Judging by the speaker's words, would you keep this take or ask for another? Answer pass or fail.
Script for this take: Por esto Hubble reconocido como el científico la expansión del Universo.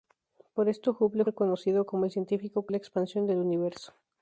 pass